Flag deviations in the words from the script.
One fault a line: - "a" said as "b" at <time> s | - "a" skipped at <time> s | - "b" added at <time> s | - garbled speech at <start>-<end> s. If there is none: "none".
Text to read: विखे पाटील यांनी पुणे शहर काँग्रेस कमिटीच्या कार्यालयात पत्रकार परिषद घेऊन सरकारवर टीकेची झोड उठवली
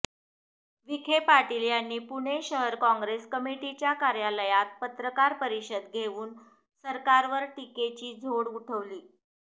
none